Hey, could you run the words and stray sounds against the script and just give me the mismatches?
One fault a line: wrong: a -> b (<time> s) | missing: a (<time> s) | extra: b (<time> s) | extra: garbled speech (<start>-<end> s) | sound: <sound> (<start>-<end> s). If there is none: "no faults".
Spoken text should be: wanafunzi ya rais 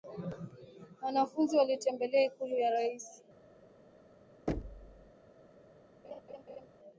extra: walitembelea ikulu (1.6 s)
sound: thud (4.5-5.1 s)
sound: laugh (6.0-6.7 s)